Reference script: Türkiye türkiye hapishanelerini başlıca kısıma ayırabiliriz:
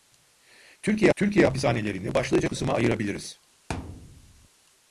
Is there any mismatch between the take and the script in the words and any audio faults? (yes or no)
yes